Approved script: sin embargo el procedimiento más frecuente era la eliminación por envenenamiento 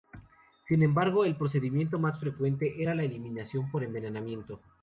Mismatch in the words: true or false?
false